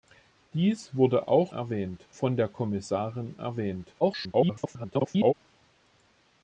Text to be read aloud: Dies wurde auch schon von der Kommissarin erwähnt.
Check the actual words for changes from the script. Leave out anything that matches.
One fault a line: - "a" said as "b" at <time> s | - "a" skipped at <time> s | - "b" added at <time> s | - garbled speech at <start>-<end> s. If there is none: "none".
- "schon" said as "erwähnt" at 1.5 s
- garbled speech at 4.0-5.3 s